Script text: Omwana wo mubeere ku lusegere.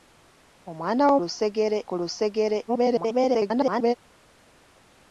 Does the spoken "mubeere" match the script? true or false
false